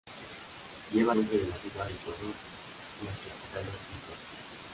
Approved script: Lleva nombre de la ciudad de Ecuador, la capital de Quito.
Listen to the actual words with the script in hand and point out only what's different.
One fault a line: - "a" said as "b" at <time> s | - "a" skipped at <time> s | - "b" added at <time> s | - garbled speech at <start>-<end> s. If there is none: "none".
none